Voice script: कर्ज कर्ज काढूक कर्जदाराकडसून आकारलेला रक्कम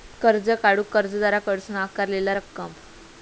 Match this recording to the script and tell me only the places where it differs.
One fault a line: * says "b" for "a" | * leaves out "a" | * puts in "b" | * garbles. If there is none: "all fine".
* leaves out "कर्ज"